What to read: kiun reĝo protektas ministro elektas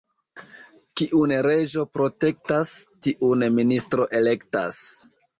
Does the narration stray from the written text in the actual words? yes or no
yes